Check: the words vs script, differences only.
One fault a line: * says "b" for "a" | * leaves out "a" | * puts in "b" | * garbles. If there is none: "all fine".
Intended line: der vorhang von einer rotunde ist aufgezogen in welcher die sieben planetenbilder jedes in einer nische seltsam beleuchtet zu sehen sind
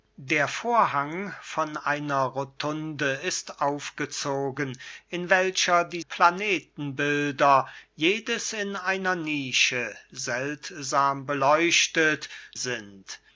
* leaves out "sieben"
* leaves out "zu sehen"